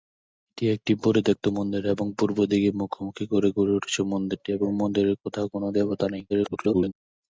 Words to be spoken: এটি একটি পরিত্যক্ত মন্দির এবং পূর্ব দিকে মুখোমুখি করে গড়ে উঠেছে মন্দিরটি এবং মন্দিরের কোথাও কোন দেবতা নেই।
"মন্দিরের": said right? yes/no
yes